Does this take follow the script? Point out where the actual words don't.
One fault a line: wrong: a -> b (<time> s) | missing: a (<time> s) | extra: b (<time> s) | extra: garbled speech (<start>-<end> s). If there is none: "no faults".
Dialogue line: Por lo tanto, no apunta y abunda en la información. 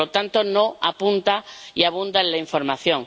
no faults